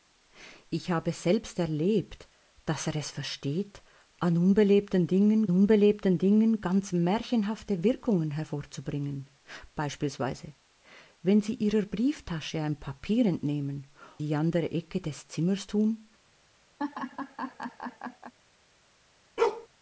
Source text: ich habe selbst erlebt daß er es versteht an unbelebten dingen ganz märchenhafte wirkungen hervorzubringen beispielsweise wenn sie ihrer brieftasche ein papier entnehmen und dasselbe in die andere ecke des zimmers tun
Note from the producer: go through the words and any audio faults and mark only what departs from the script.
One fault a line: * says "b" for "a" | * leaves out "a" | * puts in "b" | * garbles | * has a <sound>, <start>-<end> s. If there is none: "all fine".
* puts in "unbelebten dingen"
* leaves out "und dasselbe in"
* has a laugh, 16.8-18.3 s
* has a bark, 19.4-19.7 s